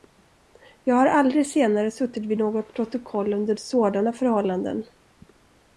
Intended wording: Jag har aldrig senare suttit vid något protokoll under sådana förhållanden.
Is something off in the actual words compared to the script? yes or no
no